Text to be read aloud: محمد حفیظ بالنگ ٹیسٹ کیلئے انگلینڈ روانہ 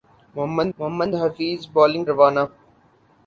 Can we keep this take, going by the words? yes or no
no